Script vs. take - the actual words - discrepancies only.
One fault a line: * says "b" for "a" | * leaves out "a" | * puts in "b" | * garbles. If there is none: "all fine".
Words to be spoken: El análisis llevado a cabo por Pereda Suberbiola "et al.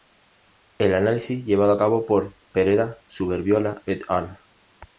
all fine